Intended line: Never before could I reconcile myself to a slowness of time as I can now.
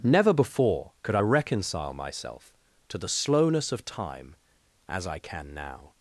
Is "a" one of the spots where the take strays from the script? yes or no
yes